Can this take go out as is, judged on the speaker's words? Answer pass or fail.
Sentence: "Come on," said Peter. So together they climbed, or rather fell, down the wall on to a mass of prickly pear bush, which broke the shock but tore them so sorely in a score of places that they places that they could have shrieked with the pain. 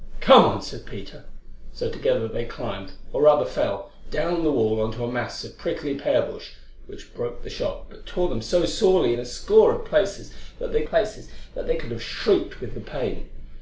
pass